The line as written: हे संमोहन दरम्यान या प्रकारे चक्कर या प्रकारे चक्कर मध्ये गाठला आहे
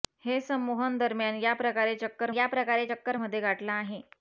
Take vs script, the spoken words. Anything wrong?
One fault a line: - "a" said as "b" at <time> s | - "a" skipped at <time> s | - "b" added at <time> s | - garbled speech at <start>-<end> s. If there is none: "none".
none